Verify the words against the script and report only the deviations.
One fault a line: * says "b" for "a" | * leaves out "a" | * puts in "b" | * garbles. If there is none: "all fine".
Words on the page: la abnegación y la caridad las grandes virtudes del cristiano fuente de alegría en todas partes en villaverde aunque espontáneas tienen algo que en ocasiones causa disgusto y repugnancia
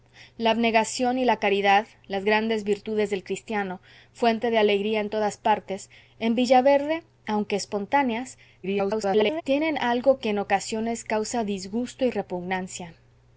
* garbles